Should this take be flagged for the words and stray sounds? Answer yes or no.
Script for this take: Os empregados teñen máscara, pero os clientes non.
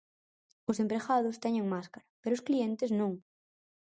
no